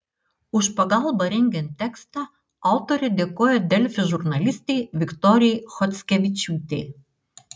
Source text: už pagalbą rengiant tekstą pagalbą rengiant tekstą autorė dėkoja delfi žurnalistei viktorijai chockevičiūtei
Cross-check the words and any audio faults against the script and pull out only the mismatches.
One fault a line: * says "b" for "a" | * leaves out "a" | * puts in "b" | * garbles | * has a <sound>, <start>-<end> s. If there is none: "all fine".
* leaves out "pagalbą rengiant tekstą"